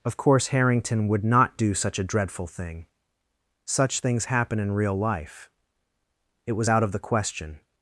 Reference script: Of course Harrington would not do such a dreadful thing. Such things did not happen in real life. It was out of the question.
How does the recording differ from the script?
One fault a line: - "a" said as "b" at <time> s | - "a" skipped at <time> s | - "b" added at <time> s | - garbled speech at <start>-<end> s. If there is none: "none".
- "did not" skipped at 4.3 s